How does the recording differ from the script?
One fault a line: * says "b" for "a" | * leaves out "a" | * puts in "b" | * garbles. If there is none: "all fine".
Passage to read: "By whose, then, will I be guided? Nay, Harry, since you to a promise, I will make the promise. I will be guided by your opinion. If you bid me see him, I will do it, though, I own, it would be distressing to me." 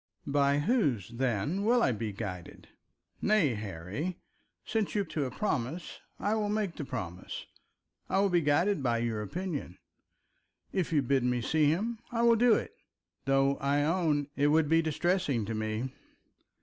all fine